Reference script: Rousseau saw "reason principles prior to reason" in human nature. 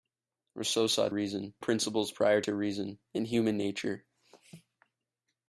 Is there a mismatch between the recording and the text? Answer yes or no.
no